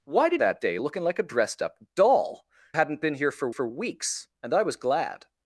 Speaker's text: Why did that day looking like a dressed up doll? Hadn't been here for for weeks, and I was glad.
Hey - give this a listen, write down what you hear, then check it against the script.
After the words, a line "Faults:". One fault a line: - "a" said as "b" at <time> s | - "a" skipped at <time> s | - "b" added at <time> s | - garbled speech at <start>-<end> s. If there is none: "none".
Why did that day looking like a dressed up doll? Hadn't been here for for weeks, and I was glad.
Faults:
none